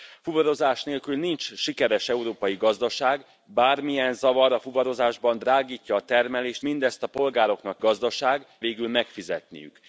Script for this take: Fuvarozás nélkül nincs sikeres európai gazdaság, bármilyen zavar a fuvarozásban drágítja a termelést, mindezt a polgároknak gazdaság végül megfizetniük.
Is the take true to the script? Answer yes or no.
yes